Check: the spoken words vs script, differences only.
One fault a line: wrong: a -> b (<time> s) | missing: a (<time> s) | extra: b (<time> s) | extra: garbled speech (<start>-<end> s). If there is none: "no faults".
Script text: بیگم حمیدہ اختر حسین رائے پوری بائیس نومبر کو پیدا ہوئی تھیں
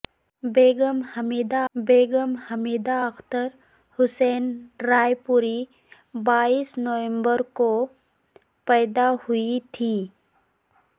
extra: بیگم حمیدہ (1.8 s)